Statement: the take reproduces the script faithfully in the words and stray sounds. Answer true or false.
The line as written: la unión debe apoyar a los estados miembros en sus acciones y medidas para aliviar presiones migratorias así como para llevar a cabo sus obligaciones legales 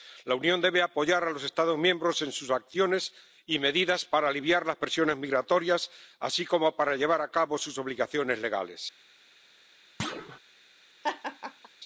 false